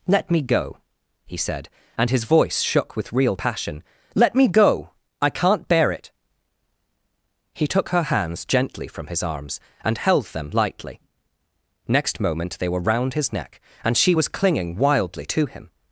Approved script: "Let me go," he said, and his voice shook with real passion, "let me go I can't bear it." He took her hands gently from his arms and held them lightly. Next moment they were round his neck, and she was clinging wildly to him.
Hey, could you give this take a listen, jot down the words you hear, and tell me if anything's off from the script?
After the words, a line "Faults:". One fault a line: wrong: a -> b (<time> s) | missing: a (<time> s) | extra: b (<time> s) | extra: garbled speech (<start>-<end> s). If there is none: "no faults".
"Let me go," he said, and his voice shook with real passion, "let me go I can't bear it." He took her hands gently from his arms and held them lightly. Next moment they were round his neck, and she was clinging wildly to him.
Faults:
no faults